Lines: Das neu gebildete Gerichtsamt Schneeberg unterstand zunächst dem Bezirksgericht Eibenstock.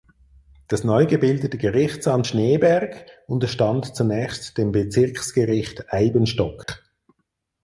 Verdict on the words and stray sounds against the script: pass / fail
fail